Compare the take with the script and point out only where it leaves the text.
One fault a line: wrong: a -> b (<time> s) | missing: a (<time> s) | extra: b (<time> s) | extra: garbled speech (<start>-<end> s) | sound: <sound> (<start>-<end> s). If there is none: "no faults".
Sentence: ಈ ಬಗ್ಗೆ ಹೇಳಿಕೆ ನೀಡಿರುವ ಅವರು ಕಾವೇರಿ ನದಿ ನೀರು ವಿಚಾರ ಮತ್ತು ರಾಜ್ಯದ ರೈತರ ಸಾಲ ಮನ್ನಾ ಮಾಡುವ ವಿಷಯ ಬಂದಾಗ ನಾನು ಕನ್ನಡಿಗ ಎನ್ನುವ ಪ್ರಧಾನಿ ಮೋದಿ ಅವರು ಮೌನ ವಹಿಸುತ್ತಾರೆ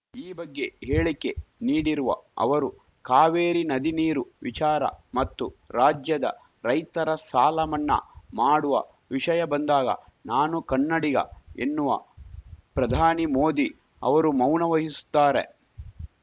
no faults